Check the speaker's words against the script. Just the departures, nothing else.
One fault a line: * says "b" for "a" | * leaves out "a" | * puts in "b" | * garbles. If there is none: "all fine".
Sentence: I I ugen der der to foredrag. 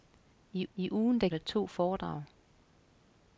all fine